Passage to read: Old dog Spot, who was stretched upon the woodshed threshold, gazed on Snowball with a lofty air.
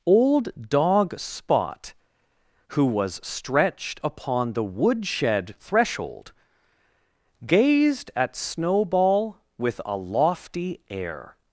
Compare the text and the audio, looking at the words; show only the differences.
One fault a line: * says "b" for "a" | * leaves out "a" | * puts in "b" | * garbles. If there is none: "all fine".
* says "at" for "on"